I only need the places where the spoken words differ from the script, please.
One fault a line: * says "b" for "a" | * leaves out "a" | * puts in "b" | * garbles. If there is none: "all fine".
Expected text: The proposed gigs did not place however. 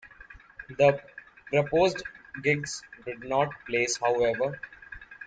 all fine